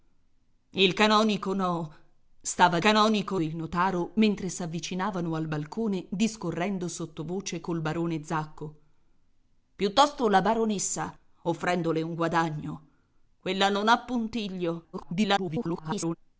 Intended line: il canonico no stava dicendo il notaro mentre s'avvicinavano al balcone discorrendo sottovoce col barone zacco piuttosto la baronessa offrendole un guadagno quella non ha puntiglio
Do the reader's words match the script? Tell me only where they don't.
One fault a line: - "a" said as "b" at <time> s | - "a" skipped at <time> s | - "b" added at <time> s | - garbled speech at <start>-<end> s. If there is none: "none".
- "dicendo" said as "canonico" at 2.8 s
- garbled speech at 14.9-16.2 s